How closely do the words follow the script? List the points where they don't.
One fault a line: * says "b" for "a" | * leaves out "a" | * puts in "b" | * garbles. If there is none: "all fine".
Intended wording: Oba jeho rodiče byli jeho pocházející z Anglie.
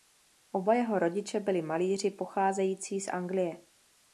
* says "malíři" for "jeho"